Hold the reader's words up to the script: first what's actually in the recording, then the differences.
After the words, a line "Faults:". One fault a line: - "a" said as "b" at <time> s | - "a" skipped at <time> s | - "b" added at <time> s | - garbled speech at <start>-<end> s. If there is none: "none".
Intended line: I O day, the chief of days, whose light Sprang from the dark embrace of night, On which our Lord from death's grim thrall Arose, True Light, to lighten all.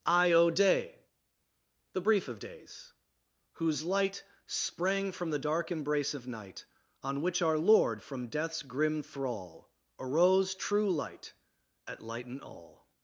I O day, the brief of days, whose light Sprang from the dark embrace of night, On which our Lord from death's grim thrall Arose, True Light, at lighten all.
Faults:
- "chief" said as "brief" at 2.0 s
- "to" said as "at" at 11.9 s